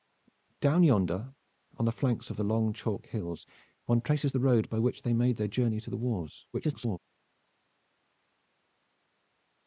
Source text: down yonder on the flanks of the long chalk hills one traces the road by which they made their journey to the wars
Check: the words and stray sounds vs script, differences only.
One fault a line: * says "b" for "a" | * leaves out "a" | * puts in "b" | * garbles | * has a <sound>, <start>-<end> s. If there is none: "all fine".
* garbles